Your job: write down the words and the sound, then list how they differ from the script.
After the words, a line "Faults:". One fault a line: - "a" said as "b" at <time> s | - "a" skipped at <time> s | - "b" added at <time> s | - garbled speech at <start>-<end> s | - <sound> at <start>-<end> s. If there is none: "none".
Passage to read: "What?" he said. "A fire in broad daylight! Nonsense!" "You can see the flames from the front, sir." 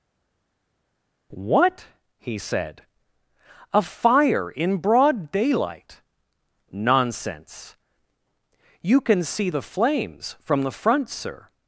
"What?" he said. "A fire in broad daylight! Nonsense!" "You can see the flames from the front, sir."
Faults:
none